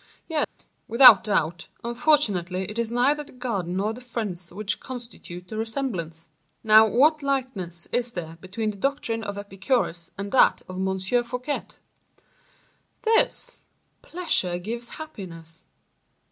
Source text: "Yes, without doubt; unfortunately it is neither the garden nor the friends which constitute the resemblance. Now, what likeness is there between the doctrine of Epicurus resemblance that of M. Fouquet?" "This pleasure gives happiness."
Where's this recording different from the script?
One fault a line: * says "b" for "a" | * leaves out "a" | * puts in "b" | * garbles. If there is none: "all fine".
* says "and" for "resemblance"